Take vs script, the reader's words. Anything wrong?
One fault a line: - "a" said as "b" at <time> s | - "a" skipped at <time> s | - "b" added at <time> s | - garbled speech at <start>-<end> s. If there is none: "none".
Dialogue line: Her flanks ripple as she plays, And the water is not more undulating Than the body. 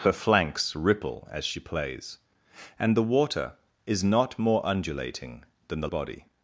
none